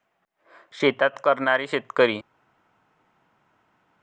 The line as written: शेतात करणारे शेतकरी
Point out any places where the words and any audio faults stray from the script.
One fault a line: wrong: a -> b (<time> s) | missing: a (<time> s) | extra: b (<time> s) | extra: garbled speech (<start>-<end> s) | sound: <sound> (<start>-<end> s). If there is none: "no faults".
no faults